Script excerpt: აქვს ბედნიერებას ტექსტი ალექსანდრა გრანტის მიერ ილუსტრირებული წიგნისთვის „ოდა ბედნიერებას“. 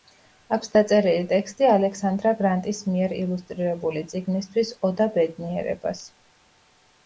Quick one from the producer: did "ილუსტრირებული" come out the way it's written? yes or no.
yes